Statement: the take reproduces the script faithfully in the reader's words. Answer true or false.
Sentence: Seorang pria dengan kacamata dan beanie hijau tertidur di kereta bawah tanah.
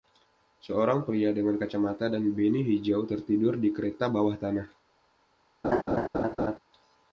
true